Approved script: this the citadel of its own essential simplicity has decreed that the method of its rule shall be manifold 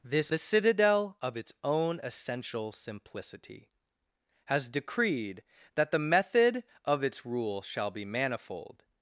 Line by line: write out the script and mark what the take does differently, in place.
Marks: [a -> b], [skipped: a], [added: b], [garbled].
this the citadel of its own essential simplicity has decreed that the method of its rule shall be manifold